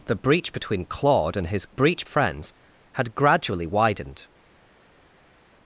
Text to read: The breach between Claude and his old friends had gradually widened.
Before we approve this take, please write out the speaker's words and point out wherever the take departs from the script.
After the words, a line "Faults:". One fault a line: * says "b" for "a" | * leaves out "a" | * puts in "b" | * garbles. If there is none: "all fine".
The breach between Claude and his breach friends had gradually widened.
Faults:
* says "breach" for "old"